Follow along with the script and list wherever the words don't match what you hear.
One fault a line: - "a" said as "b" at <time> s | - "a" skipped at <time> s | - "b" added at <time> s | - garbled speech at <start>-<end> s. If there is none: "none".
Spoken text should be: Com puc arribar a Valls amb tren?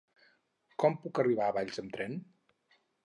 none